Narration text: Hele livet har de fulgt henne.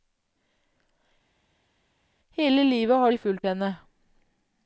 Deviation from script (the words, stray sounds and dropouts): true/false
false